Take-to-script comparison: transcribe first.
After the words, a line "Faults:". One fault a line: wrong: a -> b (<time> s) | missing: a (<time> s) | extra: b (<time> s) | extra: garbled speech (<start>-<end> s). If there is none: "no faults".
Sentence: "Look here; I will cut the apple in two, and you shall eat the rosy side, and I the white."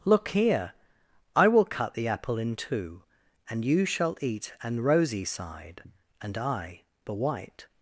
"Look here; I will cut the apple in two, and you shall eat an rosy side, and I the white."
Faults:
wrong: the -> an (4.6 s)